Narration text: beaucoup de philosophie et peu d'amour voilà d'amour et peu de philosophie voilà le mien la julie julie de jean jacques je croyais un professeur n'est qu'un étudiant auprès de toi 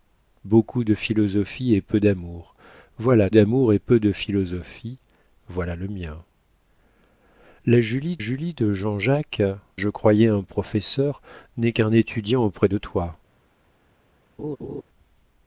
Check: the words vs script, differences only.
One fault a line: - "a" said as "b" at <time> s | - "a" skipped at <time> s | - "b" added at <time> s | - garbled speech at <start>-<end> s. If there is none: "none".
none